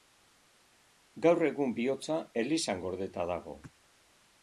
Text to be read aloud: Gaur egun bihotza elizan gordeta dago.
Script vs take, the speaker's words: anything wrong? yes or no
no